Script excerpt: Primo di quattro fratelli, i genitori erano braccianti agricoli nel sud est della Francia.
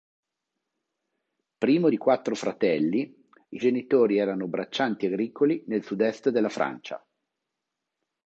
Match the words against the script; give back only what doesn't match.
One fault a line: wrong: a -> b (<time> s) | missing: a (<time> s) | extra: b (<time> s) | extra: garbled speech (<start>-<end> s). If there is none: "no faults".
no faults